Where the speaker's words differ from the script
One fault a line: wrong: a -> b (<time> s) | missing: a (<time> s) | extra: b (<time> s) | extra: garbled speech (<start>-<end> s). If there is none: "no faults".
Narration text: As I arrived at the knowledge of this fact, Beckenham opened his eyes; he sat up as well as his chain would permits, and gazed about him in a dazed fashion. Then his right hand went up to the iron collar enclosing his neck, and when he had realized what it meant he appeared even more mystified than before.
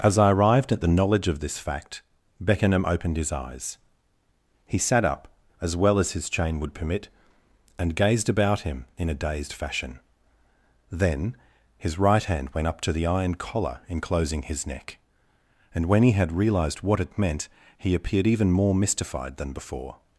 wrong: permits -> permit (6.7 s)